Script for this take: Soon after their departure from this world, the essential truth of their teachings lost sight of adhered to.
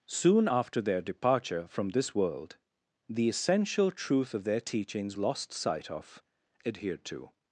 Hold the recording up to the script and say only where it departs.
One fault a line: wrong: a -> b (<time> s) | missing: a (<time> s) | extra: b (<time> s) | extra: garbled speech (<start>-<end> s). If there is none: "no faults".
no faults